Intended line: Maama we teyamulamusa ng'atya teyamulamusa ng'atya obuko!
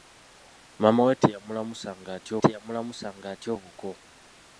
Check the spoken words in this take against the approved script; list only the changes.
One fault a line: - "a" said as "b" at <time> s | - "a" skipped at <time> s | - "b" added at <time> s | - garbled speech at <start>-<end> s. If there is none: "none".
none